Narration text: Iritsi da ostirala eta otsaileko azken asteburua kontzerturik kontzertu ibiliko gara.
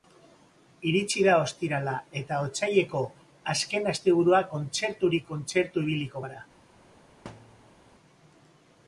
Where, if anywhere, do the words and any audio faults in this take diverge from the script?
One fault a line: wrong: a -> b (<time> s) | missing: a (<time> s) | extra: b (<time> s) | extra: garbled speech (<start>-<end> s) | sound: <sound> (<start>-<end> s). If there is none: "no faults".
sound: thud (7.2-7.8 s)